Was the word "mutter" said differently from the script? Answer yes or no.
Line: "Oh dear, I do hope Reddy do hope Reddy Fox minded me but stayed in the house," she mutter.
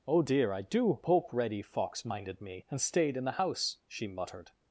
yes